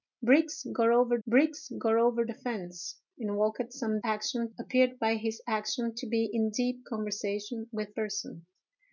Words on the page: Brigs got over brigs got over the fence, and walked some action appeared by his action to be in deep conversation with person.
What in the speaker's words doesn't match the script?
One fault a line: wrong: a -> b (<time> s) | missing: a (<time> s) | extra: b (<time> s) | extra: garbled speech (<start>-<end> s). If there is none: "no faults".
no faults